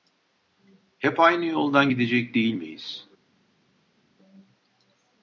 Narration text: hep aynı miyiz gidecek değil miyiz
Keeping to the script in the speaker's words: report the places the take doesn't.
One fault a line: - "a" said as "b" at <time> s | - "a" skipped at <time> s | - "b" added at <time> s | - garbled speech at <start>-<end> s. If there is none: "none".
- "miyiz" said as "yoldan" at 1.4 s